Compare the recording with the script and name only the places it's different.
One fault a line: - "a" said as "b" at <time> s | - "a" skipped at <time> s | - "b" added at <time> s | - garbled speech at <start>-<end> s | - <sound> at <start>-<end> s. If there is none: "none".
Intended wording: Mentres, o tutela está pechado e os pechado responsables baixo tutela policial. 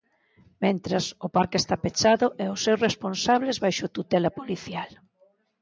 - "tutela" said as "parque" at 1.4 s
- "pechado" said as "seus" at 2.7 s